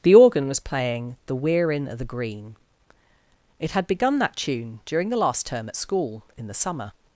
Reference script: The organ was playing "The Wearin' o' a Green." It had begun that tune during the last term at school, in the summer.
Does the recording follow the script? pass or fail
fail